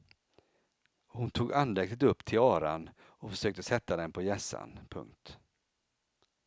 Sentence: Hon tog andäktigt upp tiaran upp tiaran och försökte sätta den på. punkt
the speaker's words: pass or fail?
fail